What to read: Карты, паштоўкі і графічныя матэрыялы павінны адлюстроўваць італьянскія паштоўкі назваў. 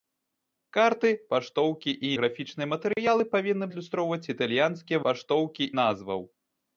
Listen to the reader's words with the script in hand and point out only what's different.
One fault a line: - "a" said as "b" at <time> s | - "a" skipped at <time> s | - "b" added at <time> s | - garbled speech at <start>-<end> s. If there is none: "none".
none